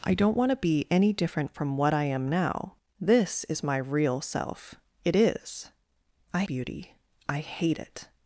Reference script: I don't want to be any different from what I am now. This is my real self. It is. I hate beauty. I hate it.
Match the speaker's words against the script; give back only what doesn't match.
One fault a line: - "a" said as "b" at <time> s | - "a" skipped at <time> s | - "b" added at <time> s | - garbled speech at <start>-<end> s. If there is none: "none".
- "hate" skipped at 6.4 s